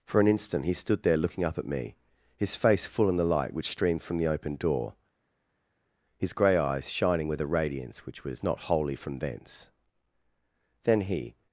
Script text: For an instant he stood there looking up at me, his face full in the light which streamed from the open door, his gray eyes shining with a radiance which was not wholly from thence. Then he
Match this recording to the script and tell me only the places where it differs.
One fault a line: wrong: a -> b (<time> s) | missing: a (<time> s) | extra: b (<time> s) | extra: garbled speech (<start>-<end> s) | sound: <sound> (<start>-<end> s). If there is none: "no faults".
no faults